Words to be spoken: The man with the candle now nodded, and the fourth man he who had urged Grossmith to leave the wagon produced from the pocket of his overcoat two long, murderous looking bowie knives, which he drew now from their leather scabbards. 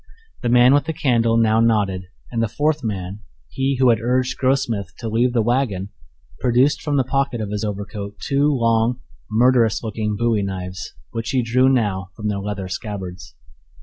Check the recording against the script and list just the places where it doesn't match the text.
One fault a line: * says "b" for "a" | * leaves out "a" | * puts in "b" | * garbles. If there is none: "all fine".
all fine